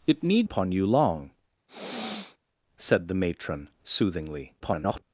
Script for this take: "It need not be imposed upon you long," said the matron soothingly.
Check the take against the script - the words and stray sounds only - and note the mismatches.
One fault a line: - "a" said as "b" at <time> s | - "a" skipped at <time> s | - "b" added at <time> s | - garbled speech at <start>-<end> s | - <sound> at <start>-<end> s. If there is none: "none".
- "not be imposed" skipped at 0.5 s
- sniff at 1.7-2.4 s
- garbled speech at 4.6-5.0 s